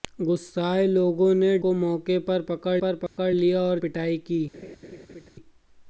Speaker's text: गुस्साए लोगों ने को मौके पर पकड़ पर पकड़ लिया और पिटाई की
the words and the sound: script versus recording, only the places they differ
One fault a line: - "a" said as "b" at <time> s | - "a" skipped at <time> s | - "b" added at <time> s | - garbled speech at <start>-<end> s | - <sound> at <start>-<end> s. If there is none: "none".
- dropout at 3.1-3.2 s
- laugh at 4.5-5.3 s